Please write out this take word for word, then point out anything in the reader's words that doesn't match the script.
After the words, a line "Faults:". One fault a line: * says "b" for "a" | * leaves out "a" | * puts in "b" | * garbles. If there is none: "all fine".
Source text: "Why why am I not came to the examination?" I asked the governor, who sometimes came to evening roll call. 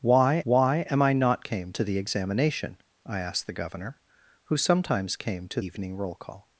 "Why why am I not came to the examination?" I asked the governor, who sometimes came to evening roll call.
Faults:
all fine